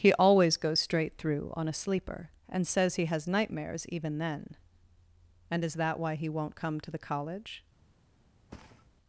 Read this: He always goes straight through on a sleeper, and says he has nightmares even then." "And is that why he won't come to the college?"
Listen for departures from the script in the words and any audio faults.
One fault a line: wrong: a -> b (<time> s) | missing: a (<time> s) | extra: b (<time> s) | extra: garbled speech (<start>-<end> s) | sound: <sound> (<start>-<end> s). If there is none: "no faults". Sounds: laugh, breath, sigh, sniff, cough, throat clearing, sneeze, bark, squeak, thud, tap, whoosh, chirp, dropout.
sound: thud (8.5-8.9 s)